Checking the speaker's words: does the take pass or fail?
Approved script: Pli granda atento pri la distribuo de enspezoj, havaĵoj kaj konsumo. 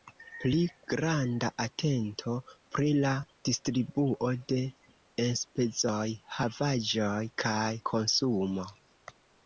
pass